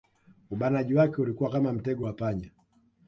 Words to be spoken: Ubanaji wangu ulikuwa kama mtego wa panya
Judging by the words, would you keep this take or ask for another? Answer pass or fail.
fail